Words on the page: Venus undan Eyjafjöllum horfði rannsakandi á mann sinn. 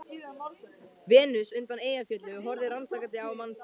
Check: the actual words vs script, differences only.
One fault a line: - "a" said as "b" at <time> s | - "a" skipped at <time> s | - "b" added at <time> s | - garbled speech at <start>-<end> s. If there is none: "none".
none